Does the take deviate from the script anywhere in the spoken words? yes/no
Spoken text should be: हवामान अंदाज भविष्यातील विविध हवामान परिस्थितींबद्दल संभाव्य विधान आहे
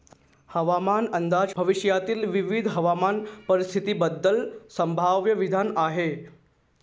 no